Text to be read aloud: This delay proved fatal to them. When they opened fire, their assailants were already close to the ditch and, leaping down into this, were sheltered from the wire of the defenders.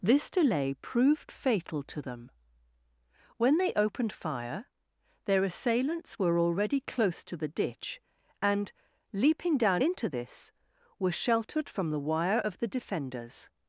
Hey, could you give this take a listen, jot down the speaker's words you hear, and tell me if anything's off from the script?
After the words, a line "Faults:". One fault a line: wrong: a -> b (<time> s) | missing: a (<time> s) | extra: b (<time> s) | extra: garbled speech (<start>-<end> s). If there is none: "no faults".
This delay proved fatal to them. When they opened fire, their assailants were already close to the ditch and, leaping down into this, were sheltered from the wire of the defenders.
Faults:
no faults